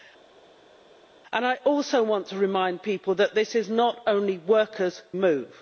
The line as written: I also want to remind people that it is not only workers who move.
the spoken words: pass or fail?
fail